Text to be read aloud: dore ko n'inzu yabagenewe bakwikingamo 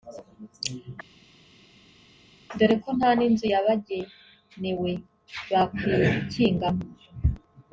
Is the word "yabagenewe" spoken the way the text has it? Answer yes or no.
yes